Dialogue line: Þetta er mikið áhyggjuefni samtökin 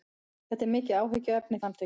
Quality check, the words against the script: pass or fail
pass